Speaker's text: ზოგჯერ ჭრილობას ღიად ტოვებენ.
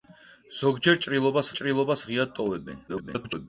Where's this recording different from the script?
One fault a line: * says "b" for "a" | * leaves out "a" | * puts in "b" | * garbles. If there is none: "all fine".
* puts in "ჭრილობას"
* garbles